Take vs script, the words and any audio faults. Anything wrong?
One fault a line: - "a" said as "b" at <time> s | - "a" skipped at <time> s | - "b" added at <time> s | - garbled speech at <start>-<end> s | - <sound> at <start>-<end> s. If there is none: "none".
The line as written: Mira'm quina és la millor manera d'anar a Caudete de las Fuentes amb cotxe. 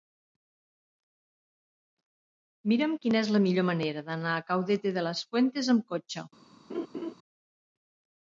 - laugh at 6.7-7.1 s